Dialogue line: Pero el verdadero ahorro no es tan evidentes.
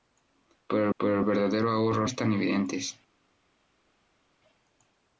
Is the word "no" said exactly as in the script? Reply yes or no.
no